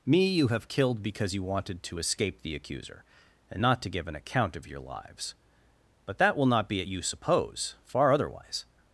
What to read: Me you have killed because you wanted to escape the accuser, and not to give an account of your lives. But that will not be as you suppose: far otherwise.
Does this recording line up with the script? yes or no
no